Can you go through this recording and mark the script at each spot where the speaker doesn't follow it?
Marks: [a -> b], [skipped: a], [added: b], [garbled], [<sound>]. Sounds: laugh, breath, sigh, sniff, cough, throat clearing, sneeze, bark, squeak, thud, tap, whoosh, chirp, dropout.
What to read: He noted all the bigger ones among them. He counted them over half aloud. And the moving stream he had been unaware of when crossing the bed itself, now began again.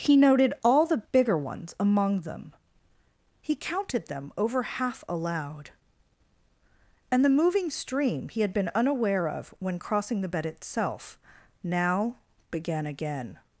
He noted all the bigger ones among them. He counted them over half aloud. And the moving stream he had been unaware of when crossing the bed itself, now began again.